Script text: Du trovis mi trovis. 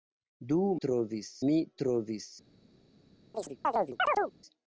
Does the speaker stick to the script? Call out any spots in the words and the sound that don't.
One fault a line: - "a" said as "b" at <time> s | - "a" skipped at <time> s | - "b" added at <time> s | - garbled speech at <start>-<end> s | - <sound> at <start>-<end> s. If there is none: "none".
- chirp at 3.3-4.3 s